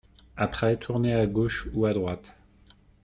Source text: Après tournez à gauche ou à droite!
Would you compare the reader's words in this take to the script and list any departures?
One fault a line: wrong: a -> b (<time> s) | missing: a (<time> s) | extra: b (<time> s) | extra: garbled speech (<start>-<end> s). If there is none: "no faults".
no faults